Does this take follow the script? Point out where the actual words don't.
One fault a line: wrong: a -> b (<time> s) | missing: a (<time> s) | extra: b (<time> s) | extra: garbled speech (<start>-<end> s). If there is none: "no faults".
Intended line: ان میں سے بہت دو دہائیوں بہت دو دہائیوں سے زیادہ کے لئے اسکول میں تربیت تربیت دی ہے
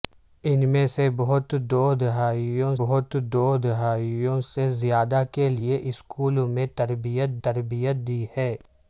no faults